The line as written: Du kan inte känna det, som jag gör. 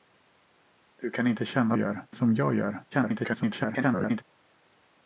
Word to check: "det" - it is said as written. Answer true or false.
false